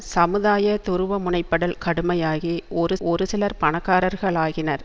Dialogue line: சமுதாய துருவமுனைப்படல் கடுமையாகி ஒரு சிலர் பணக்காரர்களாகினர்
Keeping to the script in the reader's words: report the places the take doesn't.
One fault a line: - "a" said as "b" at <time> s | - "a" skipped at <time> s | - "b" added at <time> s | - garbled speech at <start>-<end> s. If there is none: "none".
- "ஒரு" added at 3.0 s